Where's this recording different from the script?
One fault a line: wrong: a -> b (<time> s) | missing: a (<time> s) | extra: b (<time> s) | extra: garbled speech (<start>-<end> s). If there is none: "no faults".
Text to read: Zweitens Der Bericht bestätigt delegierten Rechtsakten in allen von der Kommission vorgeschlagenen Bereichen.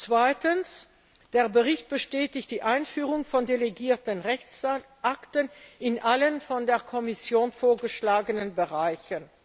extra: die Einführung von (2.5 s)